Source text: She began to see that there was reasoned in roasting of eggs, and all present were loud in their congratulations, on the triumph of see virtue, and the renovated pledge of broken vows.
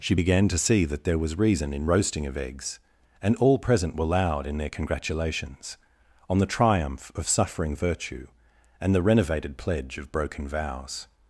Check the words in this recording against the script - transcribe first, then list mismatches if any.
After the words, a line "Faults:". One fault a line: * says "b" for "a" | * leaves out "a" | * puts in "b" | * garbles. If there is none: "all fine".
She began to see that there was reason in roasting of eggs, and all present were loud in their congratulations, on the triumph of suffering virtue, and the renovated pledge of broken vows.
Faults:
* says "reason" for "reasoned"
* says "suffering" for "see"